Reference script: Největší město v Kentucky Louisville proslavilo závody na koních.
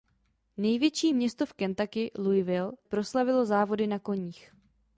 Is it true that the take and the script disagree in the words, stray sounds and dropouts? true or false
false